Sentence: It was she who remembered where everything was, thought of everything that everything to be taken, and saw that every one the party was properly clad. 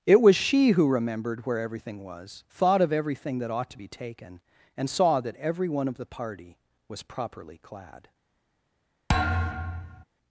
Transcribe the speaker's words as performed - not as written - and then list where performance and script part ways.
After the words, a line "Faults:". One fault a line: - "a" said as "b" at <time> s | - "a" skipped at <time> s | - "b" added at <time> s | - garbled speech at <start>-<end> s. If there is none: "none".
It was she who remembered where everything was, thought of everything that ought to be taken, and saw that every one of the party was properly clad.
Faults:
- "everything" said as "ought" at 3.5 s
- "of" added at 5.9 s